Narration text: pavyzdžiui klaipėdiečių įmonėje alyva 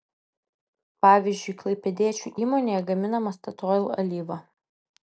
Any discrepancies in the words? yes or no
yes